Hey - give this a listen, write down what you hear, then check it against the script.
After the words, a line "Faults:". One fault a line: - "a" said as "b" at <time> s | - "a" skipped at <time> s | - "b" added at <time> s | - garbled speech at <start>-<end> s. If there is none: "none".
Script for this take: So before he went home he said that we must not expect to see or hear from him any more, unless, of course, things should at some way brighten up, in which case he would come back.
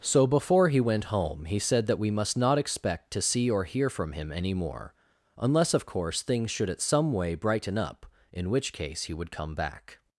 So before he went home he said that we must not expect to see or hear from him any more, unless, of course, things should at some way brighten up, in which case he would come back.
Faults:
none